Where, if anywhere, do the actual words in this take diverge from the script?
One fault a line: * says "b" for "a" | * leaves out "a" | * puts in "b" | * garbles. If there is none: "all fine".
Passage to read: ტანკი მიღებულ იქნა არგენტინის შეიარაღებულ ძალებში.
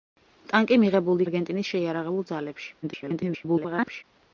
* leaves out "იქნა"
* garbles